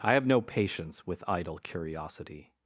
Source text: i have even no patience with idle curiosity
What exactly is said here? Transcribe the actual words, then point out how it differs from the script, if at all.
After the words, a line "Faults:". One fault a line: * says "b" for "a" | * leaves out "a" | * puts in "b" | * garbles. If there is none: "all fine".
i have no patience with idle curiosity
Faults:
* leaves out "even"